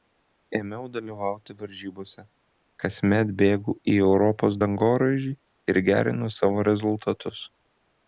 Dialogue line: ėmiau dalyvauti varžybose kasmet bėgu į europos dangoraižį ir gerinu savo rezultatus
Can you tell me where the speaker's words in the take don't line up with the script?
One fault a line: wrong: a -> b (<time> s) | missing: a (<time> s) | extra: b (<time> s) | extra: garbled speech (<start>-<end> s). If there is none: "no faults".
no faults